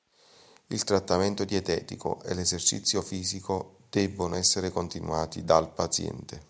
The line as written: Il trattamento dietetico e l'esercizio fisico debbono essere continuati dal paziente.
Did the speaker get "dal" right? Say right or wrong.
right